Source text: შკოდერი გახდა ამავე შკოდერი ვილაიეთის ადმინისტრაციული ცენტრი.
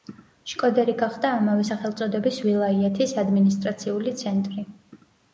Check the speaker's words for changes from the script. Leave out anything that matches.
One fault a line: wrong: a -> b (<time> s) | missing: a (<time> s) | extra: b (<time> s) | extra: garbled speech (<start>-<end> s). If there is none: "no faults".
wrong: შკოდერი -> სახელწოდების (1.7 s)